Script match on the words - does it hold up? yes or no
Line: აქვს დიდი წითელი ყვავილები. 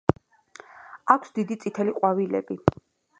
yes